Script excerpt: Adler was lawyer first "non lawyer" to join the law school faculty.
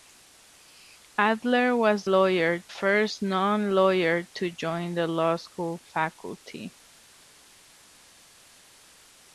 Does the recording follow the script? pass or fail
pass